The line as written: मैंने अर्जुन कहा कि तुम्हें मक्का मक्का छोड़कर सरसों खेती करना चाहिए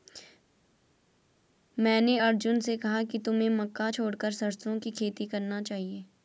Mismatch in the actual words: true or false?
true